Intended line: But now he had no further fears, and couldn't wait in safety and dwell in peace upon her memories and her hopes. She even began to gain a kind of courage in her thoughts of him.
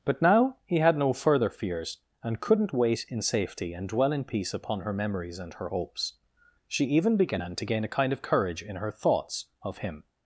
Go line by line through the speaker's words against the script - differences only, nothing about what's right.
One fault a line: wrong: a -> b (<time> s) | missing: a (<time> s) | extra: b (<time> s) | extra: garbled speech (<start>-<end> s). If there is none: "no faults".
no faults